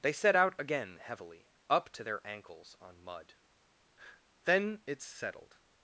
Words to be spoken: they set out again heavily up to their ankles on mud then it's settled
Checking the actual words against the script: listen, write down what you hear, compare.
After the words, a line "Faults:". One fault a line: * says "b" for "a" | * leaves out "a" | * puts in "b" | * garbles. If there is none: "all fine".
they set out again heavily up to their ankles on mud then it's settled
Faults:
all fine